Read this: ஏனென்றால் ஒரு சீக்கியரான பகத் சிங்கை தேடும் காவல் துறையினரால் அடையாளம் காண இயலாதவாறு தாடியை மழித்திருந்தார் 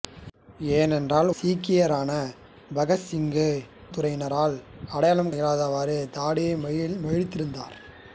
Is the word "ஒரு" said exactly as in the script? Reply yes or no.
no